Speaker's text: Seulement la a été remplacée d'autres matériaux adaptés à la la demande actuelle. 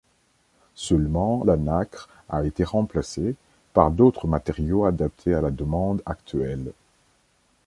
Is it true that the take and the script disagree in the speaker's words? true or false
true